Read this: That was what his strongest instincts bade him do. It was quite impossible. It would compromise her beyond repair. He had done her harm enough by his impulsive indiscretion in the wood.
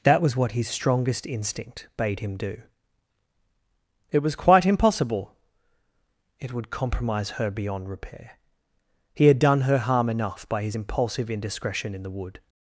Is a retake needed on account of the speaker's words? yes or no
yes